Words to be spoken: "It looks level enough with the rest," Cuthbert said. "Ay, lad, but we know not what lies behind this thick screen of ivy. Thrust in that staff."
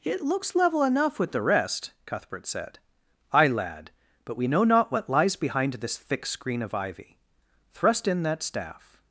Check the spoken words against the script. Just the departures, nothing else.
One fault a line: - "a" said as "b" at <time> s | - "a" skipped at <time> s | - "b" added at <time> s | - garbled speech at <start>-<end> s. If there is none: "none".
none